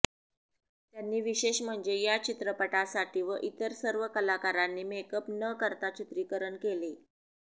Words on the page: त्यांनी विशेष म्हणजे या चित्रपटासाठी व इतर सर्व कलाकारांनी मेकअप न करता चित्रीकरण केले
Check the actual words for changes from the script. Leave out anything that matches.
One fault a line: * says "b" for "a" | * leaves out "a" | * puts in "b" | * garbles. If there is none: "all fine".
all fine